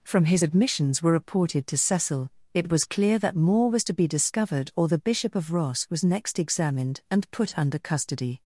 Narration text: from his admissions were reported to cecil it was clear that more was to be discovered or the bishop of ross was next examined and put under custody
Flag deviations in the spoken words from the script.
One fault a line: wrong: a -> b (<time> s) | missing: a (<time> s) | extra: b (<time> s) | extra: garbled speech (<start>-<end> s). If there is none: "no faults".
no faults